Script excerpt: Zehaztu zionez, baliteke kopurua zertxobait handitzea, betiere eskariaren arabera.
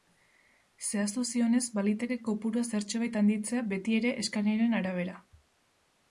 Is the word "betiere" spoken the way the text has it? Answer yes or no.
yes